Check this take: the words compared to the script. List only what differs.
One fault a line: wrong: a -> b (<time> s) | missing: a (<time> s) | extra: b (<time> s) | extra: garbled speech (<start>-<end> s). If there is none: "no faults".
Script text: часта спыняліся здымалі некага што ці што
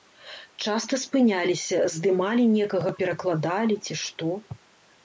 wrong: што -> перакладалі (3.0 s)